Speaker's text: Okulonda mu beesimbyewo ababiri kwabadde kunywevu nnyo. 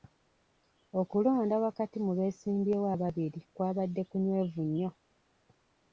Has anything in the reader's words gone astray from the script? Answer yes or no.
yes